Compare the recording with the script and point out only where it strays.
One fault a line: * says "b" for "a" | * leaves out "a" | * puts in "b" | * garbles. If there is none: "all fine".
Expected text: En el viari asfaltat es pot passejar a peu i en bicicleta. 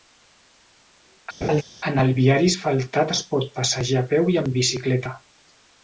all fine